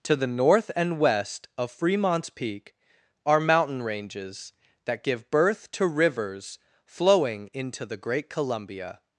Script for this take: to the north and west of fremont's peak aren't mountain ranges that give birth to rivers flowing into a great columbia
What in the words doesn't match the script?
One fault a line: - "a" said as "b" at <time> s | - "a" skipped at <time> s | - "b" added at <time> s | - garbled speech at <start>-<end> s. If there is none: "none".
- "aren't" said as "are" at 3.2 s
- "a" said as "the" at 7.9 s